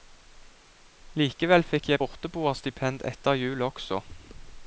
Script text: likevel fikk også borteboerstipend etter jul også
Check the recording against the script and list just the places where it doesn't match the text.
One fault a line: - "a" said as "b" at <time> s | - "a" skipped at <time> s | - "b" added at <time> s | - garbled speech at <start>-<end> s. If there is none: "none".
- "også" said as "jeg" at 1.9 s